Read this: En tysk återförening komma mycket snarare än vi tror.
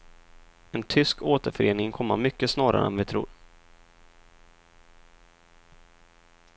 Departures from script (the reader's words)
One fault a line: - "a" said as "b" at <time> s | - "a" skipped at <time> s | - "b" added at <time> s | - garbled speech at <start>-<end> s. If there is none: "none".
none